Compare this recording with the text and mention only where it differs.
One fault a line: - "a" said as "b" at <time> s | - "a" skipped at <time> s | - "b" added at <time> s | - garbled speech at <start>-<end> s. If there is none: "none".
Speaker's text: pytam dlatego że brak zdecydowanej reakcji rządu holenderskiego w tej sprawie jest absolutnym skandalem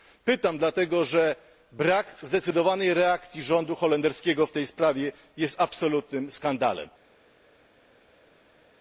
none